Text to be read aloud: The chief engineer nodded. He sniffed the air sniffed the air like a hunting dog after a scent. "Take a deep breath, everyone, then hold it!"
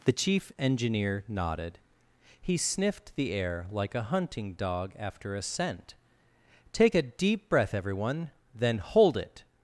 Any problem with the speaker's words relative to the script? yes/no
yes